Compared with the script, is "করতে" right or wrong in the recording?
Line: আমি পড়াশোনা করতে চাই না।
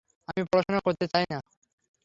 right